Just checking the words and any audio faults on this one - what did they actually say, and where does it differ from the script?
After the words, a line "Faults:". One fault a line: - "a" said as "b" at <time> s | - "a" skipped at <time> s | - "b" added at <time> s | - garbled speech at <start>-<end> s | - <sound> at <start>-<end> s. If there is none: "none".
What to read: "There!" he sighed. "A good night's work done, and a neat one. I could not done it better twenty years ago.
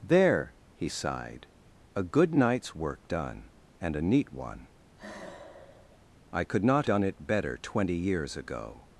"There!" he sighed. "A good night's work done, and a neat one. I could not done it better twenty years ago.
Faults:
- sigh at 5.0-6.1 s